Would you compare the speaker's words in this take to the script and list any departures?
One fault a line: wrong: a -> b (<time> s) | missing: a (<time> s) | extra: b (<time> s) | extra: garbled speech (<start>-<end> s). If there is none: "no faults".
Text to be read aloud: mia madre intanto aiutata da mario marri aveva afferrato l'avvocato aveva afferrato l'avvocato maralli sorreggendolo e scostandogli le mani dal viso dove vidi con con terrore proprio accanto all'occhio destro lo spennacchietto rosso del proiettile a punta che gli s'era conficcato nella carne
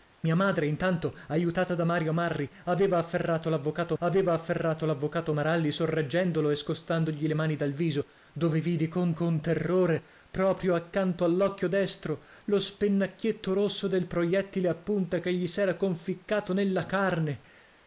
no faults